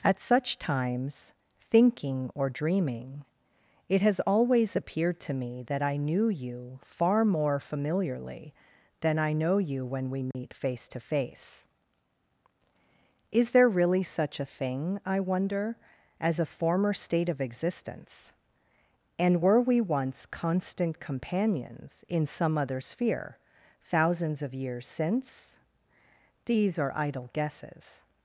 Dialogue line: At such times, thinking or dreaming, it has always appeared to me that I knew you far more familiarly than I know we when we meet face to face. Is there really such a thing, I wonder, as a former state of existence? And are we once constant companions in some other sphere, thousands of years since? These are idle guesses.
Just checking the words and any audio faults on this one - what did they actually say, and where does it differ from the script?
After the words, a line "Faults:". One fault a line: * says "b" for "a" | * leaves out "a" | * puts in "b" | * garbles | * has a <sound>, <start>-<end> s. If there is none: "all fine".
At such times, thinking or dreaming, it has always appeared to me that I knew you far more familiarly than I know you when we meet face to face. Is there really such a thing, I wonder, as a former state of existence? And were we once constant companions in some other sphere, thousands of years since? These are idle guesses.
Faults:
* says "you" for "we"
* has a dropout, 10.3-10.3 s
* says "were" for "are"